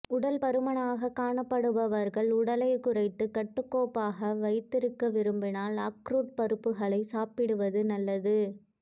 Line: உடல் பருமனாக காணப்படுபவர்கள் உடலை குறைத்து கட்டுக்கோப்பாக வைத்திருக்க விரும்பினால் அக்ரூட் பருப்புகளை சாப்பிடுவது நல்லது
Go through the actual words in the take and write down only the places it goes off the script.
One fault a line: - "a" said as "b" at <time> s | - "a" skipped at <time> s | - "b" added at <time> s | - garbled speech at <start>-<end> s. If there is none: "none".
none